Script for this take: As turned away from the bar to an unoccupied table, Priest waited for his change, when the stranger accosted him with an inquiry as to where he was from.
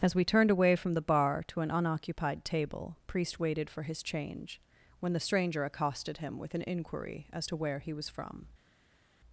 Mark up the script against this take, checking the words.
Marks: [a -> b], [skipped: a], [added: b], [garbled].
As [added: we] turned away from the bar to an unoccupied table, Priest waited for his change, when the stranger accosted him with an inquiry as to where he was from.